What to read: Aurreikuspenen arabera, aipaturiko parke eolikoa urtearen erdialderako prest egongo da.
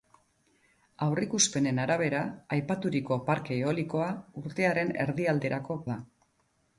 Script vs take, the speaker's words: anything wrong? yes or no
yes